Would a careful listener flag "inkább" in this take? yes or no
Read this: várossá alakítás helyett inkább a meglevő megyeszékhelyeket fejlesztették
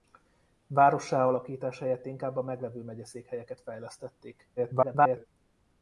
no